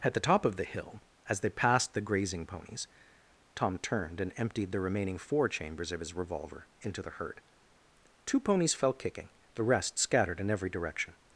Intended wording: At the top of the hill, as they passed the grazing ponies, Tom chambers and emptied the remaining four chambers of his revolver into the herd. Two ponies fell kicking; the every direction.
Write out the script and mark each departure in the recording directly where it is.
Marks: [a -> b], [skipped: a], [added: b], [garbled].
At the top of the hill, as they passed the grazing ponies, Tom [chambers -> turned] and emptied the remaining four chambers of his revolver into the herd. Two ponies fell kicking; the [added: rest scattered in] every direction.